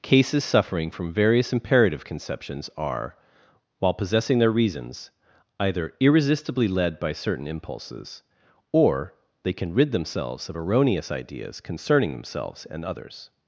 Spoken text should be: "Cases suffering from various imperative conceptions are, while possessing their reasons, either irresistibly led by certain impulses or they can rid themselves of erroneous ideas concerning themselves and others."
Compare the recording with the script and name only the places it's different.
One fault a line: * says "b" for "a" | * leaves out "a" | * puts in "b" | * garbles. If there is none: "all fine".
all fine